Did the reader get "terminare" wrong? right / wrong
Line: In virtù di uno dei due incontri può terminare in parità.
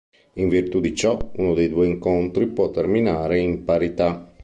right